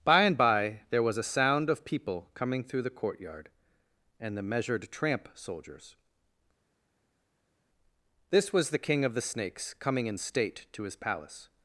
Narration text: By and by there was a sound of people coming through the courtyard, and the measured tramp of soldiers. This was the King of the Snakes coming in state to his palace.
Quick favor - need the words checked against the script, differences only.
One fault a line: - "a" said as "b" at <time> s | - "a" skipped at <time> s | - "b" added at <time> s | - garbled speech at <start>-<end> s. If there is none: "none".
- "of" skipped at 5.3 s